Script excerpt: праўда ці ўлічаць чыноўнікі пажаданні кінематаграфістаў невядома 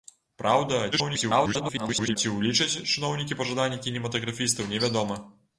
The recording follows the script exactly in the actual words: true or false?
false